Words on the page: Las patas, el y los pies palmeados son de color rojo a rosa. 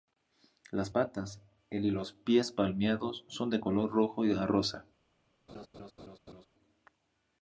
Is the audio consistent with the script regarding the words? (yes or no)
yes